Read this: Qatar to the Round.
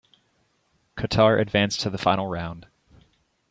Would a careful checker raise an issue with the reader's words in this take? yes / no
yes